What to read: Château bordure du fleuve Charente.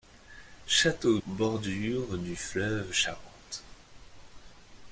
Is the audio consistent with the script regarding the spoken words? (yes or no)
yes